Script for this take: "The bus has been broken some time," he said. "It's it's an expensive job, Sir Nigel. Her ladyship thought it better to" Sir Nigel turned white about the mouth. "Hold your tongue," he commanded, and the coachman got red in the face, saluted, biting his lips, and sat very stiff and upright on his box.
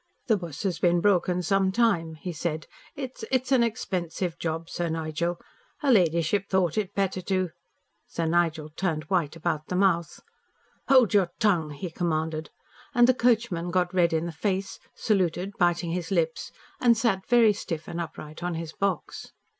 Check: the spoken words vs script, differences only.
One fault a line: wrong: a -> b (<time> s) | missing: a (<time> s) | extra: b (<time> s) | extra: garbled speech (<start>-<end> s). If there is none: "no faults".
no faults